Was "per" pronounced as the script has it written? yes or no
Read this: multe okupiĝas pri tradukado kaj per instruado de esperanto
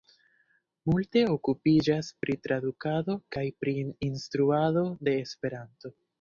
no